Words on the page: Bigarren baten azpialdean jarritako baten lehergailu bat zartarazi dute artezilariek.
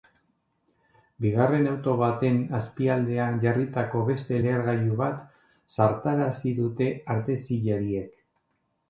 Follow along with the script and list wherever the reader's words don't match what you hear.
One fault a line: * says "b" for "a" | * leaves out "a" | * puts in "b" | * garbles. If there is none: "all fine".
* puts in "auto"
* says "beste" for "baten"